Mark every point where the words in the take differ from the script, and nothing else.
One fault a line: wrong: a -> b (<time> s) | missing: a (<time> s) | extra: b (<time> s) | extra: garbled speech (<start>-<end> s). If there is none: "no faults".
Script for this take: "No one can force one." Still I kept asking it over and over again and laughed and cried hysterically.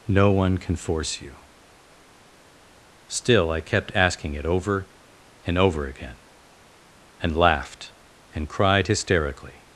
wrong: one -> you (1.2 s)